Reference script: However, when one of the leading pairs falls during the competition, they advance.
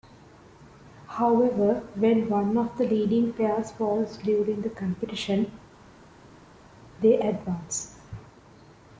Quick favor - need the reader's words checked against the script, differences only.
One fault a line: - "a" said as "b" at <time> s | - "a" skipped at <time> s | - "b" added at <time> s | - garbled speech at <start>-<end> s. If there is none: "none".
none